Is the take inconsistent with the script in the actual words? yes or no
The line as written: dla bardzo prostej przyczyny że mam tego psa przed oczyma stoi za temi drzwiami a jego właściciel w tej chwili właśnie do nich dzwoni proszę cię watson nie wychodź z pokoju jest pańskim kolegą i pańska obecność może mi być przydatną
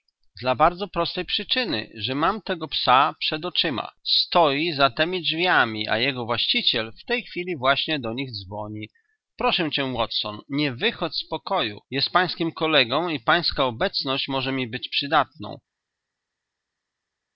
no